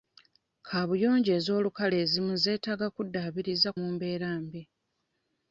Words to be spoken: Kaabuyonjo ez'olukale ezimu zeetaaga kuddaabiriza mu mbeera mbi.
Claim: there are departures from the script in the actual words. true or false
false